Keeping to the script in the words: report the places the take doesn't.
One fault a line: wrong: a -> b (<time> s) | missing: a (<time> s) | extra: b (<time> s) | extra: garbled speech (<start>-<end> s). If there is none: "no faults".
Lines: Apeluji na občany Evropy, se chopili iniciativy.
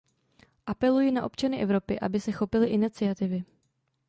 extra: aby (2.0 s)